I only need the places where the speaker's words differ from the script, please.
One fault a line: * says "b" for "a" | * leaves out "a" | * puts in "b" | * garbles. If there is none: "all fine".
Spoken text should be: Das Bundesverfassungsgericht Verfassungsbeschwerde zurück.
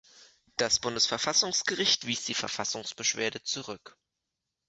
* puts in "wies die"